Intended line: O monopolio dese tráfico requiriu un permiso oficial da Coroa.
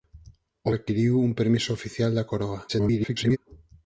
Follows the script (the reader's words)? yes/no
no